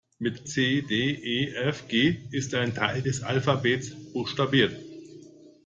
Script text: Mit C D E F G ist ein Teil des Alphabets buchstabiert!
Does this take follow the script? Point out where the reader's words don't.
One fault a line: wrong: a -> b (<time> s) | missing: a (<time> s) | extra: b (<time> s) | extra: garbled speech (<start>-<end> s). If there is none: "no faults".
no faults